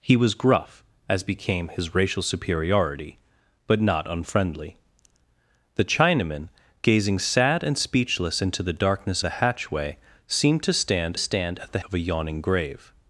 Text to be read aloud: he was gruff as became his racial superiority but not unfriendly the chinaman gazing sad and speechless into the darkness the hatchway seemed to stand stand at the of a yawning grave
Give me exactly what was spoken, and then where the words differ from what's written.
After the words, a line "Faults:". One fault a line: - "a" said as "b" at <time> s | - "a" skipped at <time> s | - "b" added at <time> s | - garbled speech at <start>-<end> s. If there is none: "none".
he was gruff as became his racial superiority but not unfriendly the chinaman gazing sad and speechless into the darkness the hatchway seemed to stand stand at the of a yawning grave
Faults:
none